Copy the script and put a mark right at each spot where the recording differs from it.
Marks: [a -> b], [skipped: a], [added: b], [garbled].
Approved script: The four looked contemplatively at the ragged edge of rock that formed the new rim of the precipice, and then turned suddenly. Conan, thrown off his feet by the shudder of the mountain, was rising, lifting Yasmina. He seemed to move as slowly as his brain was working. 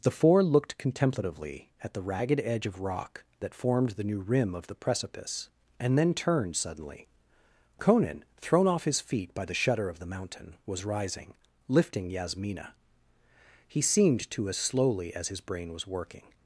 The four looked contemplatively at the ragged edge of rock that formed the new rim of the precipice, and then turned suddenly. Conan, thrown off his feet by the shudder of the mountain, was rising, lifting Yasmina. He seemed to [skipped: move] as slowly as his brain was working.